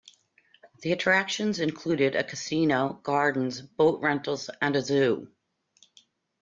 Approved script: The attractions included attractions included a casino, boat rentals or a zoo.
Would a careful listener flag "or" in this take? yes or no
yes